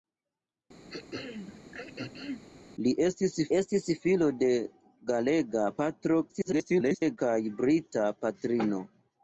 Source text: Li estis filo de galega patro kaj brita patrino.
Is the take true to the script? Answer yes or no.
no